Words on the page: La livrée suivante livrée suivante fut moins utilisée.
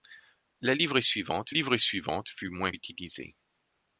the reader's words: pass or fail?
pass